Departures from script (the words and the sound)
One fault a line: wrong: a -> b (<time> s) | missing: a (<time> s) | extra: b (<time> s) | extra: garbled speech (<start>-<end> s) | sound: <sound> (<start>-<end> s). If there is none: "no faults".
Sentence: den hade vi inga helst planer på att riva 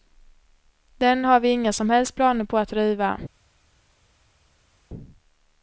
wrong: hade -> har (1.2 s)
extra: som (1.7 s)